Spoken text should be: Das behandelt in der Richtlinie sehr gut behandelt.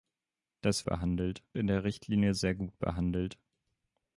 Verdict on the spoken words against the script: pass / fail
pass